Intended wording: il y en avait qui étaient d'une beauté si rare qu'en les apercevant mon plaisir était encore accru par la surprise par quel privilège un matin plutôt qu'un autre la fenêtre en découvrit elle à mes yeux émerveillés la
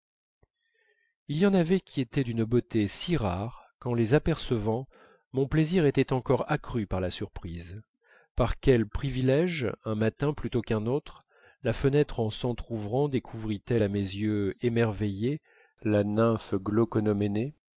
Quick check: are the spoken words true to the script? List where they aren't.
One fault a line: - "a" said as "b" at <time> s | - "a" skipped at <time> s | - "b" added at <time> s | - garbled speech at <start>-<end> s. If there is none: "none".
- "s'entr'ouvrant" added at 12.3 s